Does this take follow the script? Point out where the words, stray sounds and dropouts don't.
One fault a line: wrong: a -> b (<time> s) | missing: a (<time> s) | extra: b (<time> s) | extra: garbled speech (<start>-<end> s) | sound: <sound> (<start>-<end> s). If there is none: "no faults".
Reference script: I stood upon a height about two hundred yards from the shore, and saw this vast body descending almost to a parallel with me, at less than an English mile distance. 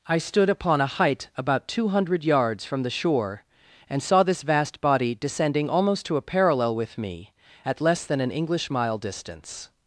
no faults